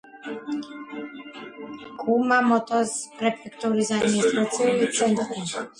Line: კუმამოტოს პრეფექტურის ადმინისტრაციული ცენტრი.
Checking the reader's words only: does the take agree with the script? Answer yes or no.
yes